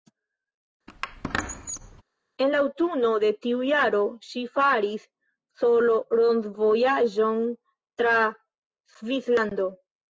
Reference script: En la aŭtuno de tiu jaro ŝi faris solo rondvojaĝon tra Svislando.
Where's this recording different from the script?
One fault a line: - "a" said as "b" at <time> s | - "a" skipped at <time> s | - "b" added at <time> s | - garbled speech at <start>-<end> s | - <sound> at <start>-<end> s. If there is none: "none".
- squeak at 0.9-2.0 s